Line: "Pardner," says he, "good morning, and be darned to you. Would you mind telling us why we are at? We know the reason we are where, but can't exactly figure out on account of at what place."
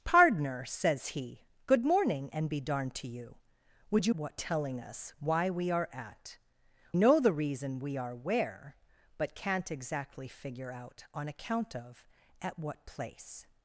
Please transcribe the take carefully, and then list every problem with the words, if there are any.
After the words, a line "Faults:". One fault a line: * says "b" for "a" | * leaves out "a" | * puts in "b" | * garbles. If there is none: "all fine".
"Pardner," says he, "good morning, and be darned to you. Would you what telling us why we are at? Know the reason we are where, but can't exactly figure out on account of at what place."
Faults:
* says "what" for "mind"
* leaves out "We"